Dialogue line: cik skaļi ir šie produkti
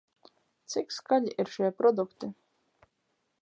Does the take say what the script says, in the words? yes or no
yes